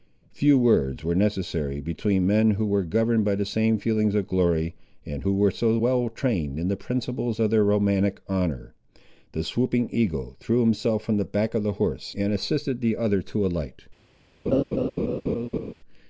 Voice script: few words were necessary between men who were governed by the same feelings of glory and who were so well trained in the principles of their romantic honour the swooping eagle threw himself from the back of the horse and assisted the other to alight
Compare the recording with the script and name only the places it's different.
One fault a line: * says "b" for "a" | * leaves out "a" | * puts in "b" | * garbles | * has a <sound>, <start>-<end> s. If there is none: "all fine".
* has a laugh, 14.5-15.7 s